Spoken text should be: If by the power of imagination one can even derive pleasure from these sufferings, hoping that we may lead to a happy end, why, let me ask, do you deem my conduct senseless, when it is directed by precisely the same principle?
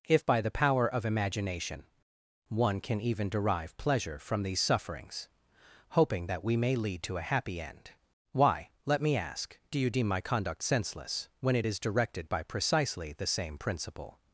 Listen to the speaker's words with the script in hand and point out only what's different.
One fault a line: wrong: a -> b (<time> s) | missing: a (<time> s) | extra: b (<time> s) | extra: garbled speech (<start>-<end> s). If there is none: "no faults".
no faults